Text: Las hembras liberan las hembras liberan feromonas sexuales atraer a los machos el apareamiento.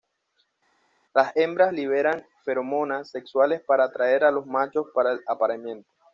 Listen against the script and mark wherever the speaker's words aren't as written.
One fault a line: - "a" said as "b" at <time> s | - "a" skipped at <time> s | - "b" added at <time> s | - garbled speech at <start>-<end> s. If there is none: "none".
- "las hembras liberan" skipped at 2.2 s
- "para" added at 3.7 s
- "para" added at 4.9 s